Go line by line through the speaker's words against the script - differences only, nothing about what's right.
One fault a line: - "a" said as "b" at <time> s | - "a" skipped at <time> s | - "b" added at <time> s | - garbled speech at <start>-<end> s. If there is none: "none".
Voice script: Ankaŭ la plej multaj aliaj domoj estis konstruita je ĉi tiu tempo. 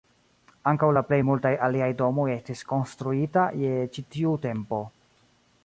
none